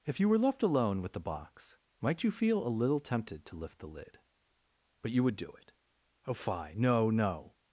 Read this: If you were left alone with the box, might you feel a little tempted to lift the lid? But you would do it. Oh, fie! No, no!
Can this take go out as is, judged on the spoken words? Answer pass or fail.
pass